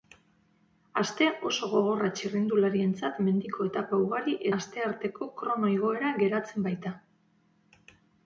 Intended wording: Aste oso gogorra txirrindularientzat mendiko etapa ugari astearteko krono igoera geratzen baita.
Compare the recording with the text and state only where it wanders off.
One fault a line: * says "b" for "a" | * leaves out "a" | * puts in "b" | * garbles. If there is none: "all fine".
all fine